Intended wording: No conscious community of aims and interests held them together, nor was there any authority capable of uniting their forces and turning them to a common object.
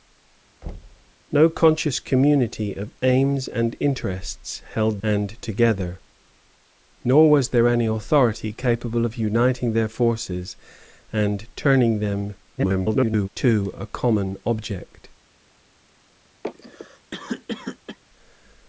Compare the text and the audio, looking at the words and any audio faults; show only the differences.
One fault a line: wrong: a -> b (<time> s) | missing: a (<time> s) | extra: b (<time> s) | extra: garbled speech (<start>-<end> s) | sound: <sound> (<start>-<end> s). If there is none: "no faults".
sound: thud (0.6-1.1 s)
wrong: them -> and (5.0 s)
extra: garbled speech (12.6-13.3 s)
sound: cough (16.4-18.0 s)